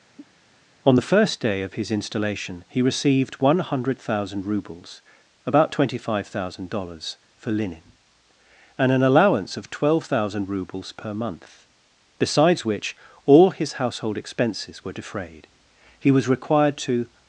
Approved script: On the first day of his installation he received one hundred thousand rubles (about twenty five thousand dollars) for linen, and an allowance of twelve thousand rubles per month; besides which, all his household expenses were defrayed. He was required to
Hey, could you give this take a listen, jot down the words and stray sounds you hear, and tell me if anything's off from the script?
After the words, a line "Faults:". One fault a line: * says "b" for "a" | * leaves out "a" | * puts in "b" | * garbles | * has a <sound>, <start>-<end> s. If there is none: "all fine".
On the first day of his installation he received one hundred thousand rubles (about twenty five thousand dollars) for linen, and an allowance of twelve thousand rubles per month; besides which, all his household expenses were defrayed. He was required to
Faults:
* has a cough, 0.2-0.4 s